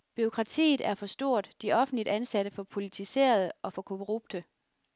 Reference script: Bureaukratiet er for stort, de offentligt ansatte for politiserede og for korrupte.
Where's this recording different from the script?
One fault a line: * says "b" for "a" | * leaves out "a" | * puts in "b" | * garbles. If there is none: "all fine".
all fine